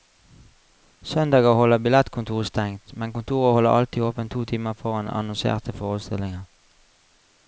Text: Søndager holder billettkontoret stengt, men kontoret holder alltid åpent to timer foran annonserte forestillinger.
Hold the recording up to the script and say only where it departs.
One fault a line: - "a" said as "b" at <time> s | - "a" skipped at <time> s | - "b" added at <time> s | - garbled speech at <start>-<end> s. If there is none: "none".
none